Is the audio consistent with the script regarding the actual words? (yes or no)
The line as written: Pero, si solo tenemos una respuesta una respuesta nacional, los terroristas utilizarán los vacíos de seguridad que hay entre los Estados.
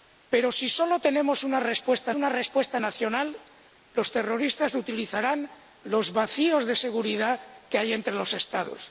yes